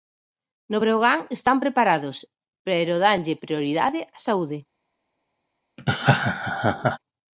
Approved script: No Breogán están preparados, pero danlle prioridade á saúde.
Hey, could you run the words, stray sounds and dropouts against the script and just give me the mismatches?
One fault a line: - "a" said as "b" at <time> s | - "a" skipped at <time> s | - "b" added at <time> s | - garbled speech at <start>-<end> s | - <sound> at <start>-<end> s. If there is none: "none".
- laugh at 5.8-7.0 s